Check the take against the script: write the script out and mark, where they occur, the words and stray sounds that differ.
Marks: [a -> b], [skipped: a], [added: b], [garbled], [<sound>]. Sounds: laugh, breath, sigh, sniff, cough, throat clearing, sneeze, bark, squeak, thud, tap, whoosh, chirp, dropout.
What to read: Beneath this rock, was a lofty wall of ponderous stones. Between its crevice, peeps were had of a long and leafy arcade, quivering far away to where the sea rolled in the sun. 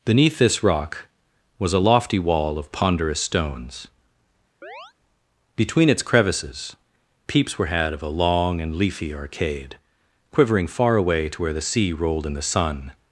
Beneath this rock, was a lofty wall of ponderous stones. [chirp] Between its [crevice, -> crevices] peeps were had of a long and leafy arcade, quivering far away to where the sea rolled in the sun.